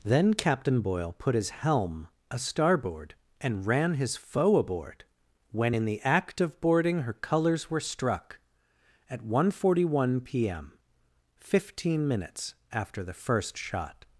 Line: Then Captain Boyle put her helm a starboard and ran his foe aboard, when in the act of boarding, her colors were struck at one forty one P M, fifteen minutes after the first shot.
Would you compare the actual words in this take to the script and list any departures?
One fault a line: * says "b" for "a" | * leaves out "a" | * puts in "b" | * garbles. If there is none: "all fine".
* says "his" for "her"